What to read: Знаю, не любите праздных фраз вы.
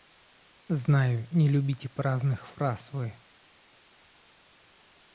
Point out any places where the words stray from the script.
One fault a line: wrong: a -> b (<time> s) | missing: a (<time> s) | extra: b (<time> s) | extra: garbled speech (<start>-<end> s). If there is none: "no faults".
no faults